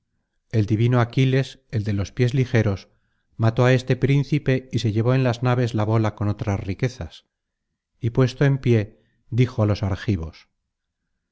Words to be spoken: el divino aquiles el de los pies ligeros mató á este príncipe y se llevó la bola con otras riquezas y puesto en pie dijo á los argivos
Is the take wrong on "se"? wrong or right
right